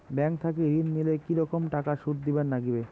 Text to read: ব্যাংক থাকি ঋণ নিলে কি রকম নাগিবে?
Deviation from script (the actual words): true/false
true